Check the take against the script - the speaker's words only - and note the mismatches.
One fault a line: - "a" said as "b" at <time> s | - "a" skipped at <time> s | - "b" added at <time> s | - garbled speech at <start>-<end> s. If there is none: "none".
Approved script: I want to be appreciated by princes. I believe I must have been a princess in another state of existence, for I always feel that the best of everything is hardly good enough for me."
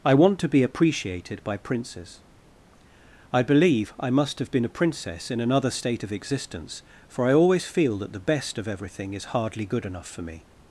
none